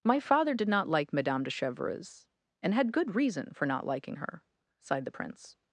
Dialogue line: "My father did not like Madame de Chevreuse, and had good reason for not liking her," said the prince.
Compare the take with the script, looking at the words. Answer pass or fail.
fail